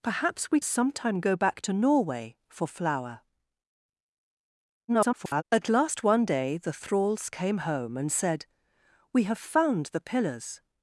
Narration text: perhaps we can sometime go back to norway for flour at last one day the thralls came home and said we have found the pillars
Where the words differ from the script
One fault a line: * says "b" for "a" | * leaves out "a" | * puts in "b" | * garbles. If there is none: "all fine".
* leaves out "can"
* garbles